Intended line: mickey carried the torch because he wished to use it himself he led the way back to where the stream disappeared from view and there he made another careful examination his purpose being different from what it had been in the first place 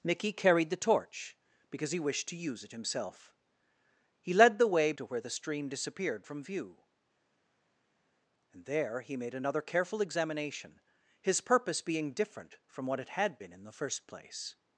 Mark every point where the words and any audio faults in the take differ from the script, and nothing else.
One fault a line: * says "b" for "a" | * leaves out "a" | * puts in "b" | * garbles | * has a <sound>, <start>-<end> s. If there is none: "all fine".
* leaves out "back"